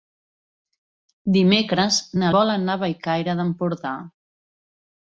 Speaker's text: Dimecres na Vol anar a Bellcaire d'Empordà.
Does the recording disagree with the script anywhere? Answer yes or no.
no